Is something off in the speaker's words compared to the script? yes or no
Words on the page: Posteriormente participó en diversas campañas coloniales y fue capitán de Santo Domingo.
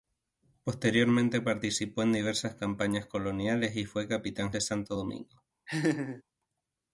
no